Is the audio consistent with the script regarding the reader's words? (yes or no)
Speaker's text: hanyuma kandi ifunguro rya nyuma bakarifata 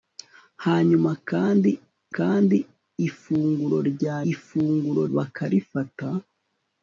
no